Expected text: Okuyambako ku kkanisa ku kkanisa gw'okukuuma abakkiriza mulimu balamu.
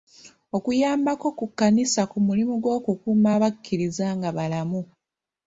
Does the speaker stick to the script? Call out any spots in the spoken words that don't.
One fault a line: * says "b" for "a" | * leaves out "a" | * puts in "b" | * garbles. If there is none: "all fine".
* says "mulimu" for "kkanisa"
* says "nga" for "mulimu"